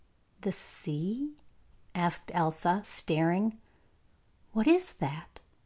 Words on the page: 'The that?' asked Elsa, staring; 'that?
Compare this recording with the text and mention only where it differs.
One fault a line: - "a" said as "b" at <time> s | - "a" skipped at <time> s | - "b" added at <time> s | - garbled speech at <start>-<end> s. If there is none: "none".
- "that" said as "sea" at 0.5 s
- "what is" added at 4.5 s